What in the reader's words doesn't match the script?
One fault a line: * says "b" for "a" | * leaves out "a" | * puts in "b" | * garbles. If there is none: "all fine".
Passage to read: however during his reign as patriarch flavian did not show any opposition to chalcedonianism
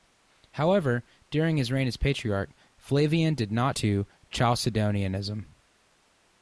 * leaves out "show any opposition"